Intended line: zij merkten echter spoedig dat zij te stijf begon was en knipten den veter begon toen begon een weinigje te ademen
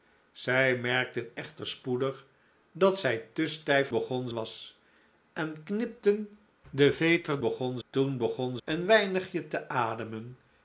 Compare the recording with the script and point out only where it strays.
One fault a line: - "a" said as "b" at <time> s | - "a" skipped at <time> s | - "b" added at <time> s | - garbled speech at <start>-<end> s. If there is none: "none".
none